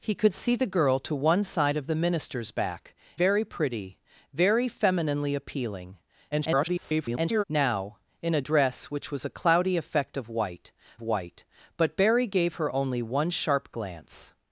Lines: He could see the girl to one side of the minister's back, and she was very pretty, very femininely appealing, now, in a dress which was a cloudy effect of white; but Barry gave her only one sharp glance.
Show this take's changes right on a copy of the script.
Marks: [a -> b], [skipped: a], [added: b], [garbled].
He could see the girl to one side of the minister's back, [skipped: and she was] very pretty, very femininely appealing, [garbled] now, in a dress which was a cloudy effect of white; [added: white] but Barry gave her only one sharp glance.